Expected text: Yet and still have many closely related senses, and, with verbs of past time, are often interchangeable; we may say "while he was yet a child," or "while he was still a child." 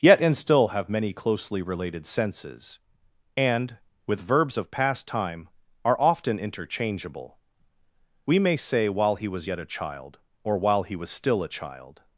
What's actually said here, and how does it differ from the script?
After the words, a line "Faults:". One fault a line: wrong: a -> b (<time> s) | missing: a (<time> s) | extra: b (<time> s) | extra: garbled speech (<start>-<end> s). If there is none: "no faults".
Yet and still have many closely related senses, and, with verbs of past time, are often interchangeable; we may say "while he was yet a child," or "while he was still a child."
Faults:
no faults